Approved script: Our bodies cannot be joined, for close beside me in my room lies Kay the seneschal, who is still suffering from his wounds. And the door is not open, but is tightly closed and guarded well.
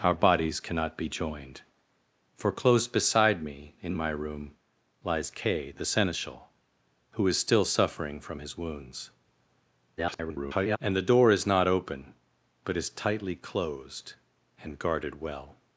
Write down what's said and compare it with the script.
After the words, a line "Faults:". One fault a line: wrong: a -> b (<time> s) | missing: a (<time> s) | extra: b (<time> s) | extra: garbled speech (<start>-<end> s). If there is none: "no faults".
Our bodies cannot be joined, for close beside me in my room lies Kay the seneschal, who is still suffering from his wounds. [garbled] And the door is not open, but is tightly closed and guarded well.
Faults:
extra: garbled speech (10.0-10.8 s)